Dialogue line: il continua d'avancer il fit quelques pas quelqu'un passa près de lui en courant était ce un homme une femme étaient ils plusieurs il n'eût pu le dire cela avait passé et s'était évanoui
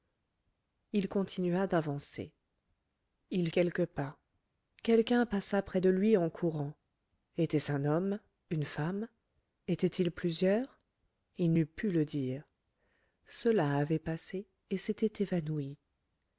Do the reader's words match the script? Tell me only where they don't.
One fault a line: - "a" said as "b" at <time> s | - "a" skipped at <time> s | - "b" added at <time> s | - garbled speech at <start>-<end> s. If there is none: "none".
- "fit" skipped at 3.5 s